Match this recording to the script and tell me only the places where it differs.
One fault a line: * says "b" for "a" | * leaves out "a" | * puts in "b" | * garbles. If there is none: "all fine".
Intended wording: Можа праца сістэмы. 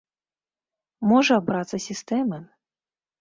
all fine